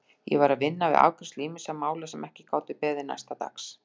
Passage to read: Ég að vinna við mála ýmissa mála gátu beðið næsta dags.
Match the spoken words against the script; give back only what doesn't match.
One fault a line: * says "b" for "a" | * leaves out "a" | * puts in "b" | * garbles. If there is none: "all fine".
* puts in "var"
* says "afgreiðslu" for "mála"
* puts in "sem ekki"